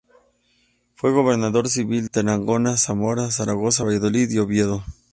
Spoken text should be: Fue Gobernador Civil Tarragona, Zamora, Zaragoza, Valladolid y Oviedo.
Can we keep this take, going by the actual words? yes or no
yes